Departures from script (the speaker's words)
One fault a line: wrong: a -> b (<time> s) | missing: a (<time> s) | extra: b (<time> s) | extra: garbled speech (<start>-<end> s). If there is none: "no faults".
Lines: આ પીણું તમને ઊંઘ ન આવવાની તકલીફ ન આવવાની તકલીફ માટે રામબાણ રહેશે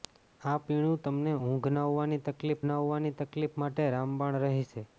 no faults